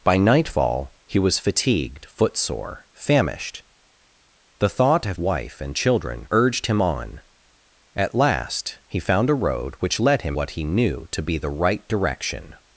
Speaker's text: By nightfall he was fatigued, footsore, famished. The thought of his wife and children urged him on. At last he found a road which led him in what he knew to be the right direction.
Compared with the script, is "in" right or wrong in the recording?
wrong